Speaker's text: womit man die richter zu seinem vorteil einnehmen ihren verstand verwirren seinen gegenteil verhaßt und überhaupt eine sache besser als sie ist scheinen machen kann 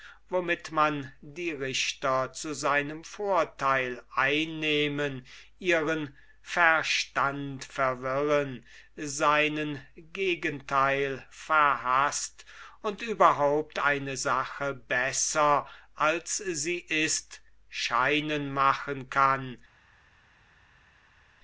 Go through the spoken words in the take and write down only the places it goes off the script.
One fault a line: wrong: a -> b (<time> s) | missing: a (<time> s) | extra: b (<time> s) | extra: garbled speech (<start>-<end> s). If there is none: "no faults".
no faults